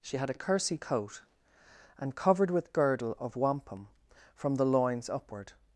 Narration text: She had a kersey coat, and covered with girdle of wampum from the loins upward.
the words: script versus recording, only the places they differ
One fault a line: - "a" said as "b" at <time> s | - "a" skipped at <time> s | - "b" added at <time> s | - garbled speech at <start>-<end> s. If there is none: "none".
none